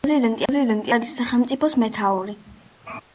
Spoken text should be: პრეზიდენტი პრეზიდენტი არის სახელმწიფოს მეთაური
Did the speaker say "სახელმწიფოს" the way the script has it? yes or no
yes